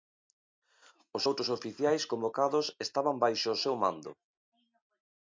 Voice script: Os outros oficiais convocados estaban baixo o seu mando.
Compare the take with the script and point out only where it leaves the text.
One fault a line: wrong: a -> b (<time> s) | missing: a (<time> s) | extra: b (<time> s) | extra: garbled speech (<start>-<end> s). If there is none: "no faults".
no faults